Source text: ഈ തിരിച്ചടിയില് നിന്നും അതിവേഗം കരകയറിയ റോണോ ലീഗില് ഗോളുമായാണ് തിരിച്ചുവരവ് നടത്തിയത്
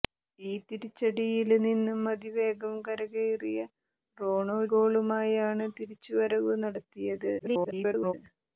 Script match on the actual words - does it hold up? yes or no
no